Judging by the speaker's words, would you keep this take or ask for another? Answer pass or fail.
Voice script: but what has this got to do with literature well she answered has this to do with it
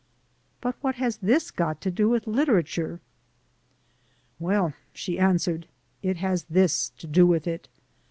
fail